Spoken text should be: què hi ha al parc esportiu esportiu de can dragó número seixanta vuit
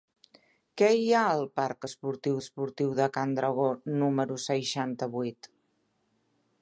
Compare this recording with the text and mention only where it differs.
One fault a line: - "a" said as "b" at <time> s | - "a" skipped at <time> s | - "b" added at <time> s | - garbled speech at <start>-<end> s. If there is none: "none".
none